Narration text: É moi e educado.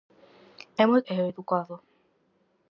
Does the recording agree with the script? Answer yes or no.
yes